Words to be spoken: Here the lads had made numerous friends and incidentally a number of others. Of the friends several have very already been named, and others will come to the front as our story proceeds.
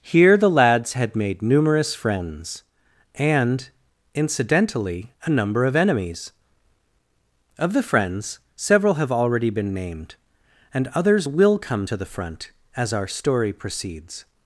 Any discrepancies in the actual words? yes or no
yes